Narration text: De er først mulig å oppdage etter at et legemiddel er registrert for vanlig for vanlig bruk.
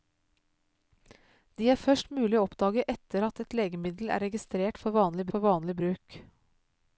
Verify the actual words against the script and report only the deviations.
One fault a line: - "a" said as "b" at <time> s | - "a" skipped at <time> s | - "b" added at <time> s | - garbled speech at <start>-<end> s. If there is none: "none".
none